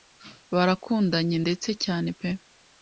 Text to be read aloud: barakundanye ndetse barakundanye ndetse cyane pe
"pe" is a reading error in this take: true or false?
false